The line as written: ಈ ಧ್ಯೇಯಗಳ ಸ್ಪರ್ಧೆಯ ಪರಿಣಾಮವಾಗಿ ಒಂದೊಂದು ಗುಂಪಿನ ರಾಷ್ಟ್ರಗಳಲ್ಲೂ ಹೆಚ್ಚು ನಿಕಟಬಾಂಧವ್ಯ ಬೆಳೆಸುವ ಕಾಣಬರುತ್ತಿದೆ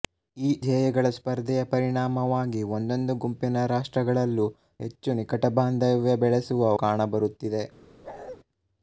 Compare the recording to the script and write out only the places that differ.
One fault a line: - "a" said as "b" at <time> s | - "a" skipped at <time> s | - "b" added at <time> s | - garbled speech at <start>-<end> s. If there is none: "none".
none